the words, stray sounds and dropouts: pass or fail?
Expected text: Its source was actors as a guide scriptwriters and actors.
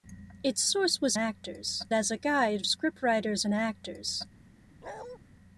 fail